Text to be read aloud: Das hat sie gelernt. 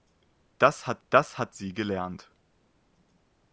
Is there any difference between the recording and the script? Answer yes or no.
yes